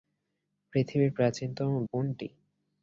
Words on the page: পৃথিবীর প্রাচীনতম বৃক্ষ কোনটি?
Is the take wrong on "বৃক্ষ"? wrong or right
wrong